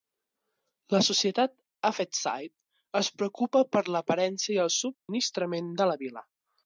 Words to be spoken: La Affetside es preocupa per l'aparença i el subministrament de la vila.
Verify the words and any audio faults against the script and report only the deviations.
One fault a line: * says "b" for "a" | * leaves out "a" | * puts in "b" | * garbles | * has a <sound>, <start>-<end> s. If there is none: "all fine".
* puts in "societat"
* has a dropout, 4.9-5.1 s